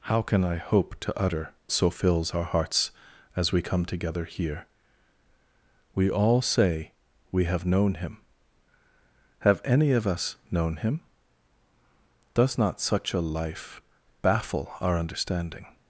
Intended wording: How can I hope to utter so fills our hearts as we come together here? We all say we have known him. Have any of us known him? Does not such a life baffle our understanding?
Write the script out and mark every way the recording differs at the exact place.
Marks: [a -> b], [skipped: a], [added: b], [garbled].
How can I hope to utter so fills our hearts as we come together here? We all say we have known him. Have any of us known him? Does not such a life baffle our understanding?